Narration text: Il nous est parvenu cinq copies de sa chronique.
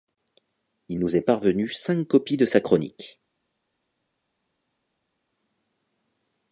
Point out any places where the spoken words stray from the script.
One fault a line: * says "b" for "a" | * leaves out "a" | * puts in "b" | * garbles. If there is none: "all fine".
all fine